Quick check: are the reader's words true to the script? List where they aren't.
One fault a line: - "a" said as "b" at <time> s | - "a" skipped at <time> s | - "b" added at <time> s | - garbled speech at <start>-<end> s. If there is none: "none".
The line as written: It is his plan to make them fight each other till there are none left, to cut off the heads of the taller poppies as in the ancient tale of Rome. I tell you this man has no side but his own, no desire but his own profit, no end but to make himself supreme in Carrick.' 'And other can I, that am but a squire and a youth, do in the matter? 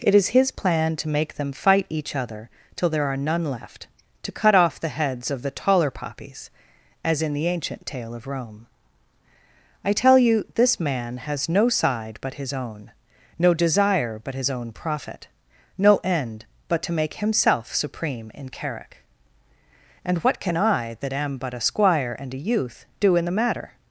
- "other" said as "what" at 20.2 s